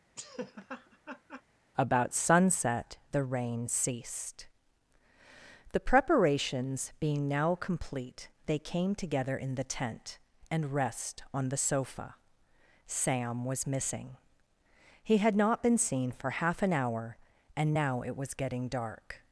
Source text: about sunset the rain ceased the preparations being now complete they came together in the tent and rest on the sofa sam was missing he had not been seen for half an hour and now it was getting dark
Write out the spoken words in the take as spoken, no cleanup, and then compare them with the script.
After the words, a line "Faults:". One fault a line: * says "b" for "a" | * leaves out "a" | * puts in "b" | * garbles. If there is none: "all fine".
about sunset the rain ceased the preparations being now complete they came together in the tent and rest on the sofa sam was missing he had not been seen for half an hour and now it was getting dark
Faults:
all fine